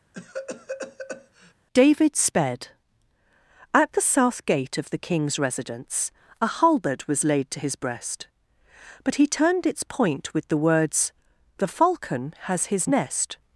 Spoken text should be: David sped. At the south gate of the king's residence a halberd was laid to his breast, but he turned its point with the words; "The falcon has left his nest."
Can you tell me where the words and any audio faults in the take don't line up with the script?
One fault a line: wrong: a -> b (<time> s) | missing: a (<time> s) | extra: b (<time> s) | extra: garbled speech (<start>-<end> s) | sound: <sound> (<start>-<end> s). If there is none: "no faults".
sound: cough (0.1-1.5 s)
missing: left (12.7 s)